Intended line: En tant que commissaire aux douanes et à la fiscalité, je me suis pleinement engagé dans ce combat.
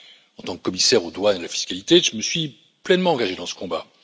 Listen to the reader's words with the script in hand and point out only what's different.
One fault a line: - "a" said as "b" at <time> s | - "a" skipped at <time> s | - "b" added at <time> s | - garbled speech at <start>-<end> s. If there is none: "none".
none